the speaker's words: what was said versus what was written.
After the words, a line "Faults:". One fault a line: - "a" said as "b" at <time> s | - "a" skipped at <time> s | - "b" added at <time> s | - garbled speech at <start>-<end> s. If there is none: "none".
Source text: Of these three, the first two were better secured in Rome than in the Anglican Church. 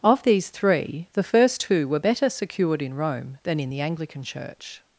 Of these three, the first two were better secured in Rome than in the Anglican Church.
Faults:
none